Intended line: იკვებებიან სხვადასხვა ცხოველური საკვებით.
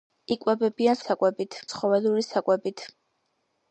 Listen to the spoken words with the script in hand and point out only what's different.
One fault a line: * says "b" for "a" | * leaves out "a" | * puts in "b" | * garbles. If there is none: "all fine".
* says "საკვებით" for "სხვადასხვა"